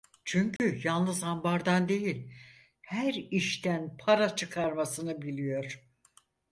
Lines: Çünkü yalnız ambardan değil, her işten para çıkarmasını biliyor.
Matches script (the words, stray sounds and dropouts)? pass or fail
fail